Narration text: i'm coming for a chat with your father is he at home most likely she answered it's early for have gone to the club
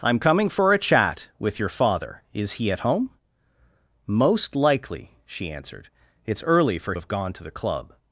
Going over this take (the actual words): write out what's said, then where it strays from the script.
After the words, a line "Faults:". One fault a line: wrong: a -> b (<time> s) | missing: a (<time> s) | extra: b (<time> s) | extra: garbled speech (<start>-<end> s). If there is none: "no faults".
i'm coming for a chat with your father is he at home most likely she answered it's early for have gone to the club
Faults:
no faults